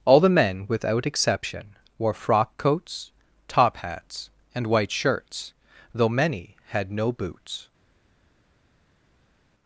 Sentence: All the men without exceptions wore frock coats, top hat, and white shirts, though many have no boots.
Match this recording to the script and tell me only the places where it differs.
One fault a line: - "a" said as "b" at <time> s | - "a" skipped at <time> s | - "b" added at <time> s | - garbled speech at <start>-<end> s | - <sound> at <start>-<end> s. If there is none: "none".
- "exceptions" said as "exception" at 1.1 s
- "hat" said as "hats" at 3.8 s
- "have" said as "had" at 6.7 s